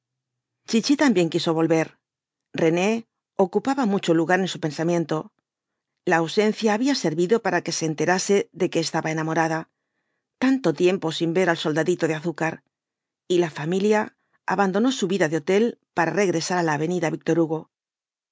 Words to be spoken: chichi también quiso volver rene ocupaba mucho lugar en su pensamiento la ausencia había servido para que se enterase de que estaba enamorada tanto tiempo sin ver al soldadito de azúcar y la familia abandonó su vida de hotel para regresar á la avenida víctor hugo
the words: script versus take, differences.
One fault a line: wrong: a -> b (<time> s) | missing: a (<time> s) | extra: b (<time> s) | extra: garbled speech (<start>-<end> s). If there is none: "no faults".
no faults